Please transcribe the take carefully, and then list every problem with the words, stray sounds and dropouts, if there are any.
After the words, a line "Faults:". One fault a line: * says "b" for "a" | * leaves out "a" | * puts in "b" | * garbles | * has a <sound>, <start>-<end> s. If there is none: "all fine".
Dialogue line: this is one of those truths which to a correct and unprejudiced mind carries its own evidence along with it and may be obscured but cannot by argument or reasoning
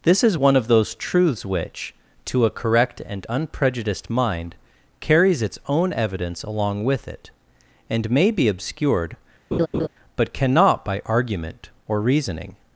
this is one of those truths which to a correct and unprejudiced mind carries its own evidence along with it and may be obscured but cannot by argument or reasoning
Faults:
* has a laugh, 9.5-9.9 s